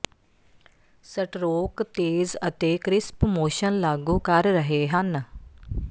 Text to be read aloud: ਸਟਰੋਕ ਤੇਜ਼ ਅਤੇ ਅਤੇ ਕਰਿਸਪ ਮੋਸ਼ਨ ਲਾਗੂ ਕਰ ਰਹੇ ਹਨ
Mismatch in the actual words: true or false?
true